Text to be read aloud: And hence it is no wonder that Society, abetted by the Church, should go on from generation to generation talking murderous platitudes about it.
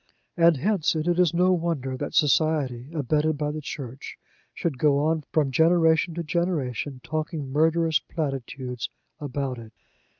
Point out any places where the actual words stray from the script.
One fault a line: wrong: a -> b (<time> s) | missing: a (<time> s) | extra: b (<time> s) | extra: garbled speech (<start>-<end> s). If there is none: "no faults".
no faults